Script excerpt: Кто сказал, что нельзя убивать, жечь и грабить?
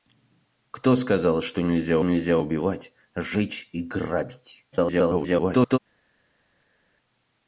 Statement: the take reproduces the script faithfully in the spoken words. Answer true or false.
false